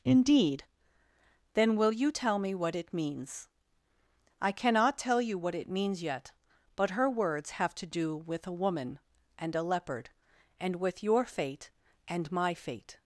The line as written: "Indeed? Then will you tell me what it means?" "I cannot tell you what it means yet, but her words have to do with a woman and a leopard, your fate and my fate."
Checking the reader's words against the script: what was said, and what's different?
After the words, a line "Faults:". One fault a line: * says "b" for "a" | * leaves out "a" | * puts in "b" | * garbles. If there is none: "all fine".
"Indeed? Then will you tell me what it means?" "I cannot tell you what it means yet, but her words have to do with a woman and a leopard, and with your fate and my fate."
Faults:
* puts in "and with"